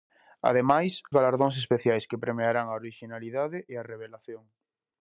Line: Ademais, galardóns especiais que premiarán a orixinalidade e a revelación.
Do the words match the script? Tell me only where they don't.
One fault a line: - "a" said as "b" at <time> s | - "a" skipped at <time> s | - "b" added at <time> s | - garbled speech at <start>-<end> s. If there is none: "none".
none